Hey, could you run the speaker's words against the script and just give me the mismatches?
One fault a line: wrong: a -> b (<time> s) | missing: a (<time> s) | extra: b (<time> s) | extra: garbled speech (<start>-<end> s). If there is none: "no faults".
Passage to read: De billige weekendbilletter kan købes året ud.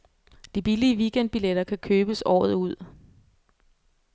no faults